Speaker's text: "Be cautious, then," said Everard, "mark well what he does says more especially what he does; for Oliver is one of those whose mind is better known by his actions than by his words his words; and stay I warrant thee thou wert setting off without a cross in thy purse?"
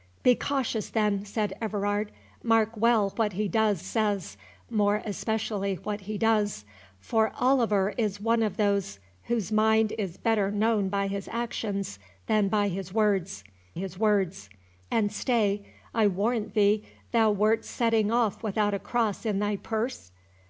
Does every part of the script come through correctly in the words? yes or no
yes